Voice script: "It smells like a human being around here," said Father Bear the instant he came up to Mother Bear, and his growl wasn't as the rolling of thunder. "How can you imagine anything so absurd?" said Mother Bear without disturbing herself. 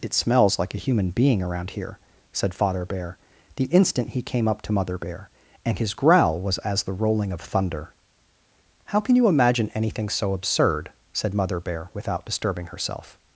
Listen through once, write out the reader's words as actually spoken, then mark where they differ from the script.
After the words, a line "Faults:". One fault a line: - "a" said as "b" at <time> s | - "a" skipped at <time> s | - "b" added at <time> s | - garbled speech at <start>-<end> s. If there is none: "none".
"It smells like a human being around here," said Father Bear the instant he came up to Mother Bear, and his growl was as the rolling of thunder. "How can you imagine anything so absurd?" said Mother Bear without disturbing herself.
Faults:
- "wasn't" said as "was" at 6.4 s